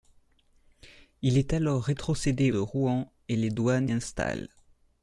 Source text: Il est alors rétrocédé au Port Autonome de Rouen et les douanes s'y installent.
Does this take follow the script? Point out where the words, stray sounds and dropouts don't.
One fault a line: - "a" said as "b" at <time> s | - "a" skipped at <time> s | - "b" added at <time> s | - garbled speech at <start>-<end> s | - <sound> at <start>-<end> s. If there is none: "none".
- "au Port Autonome" skipped at 2.5 s
- "s'y" skipped at 3.9 s